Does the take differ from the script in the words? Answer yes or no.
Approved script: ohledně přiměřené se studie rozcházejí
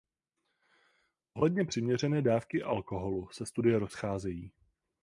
yes